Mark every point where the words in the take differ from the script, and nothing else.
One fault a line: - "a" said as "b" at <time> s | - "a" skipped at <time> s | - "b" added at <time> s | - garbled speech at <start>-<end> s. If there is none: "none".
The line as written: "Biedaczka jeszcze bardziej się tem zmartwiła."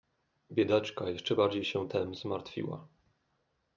none